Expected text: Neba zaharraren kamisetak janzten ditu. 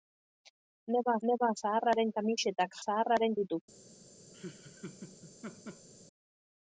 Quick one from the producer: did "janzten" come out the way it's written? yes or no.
no